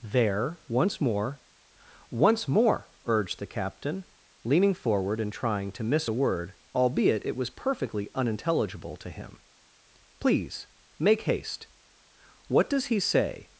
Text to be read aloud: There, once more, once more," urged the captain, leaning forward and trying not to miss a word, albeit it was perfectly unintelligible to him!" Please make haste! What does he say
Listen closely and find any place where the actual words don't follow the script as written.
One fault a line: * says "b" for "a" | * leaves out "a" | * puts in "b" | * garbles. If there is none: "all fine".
* leaves out "not"